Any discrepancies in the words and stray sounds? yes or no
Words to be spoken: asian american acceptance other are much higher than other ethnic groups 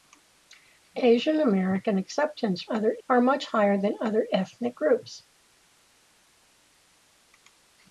no